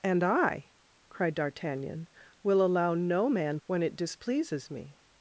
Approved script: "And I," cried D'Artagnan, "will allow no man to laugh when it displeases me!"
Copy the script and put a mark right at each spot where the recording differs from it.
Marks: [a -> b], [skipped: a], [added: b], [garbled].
"And I," cried D'Artagnan, "will allow no man [skipped: to laugh] when it displeases me!"